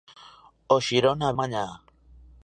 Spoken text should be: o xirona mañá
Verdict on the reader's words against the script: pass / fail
pass